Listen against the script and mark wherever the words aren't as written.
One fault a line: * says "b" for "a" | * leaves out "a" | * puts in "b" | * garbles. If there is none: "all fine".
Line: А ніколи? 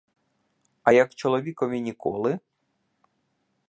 * puts in "як чоловікові"